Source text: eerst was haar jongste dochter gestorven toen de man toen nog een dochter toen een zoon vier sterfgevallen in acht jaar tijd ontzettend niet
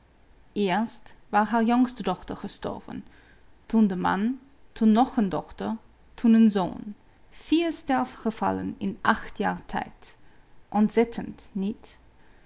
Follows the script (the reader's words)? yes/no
yes